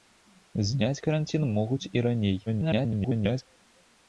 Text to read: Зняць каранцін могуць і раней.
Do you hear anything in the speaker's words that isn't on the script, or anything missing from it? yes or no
yes